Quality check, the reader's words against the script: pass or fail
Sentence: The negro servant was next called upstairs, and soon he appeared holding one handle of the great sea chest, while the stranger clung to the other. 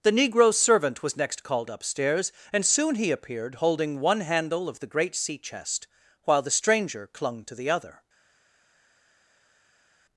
pass